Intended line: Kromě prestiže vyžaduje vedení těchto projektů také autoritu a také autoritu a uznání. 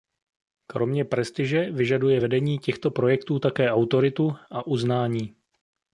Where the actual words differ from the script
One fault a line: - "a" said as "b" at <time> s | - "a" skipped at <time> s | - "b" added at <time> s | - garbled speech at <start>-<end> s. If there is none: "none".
- "také autoritu a" skipped at 4.7 s